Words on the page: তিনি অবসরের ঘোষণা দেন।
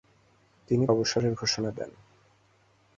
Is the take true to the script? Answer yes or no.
yes